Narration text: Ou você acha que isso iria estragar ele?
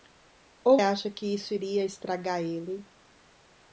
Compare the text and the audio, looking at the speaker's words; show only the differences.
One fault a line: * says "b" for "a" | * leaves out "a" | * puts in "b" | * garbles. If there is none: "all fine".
* leaves out "você"